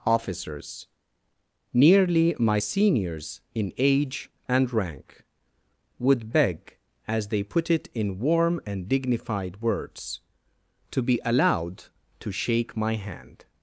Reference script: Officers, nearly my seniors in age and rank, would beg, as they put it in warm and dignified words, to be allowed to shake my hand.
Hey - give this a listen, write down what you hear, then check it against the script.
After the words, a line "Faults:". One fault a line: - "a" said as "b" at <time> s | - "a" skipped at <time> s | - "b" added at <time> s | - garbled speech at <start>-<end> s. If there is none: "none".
Officers, nearly my seniors in age and rank, would beg, as they put it in warm and dignified words, to be allowed to shake my hand.
Faults:
none